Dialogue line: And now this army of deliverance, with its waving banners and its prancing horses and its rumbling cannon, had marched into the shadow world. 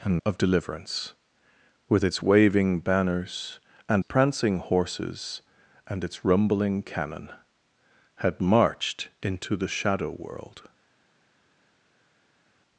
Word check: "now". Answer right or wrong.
wrong